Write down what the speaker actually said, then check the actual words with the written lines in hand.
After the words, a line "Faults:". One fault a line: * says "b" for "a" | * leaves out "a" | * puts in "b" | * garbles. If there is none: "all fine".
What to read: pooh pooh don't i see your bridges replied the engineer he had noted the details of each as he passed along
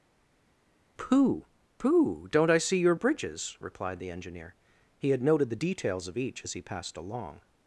pooh pooh don't i see your bridges replied the engineer he had noted the details of each as he passed along
Faults:
all fine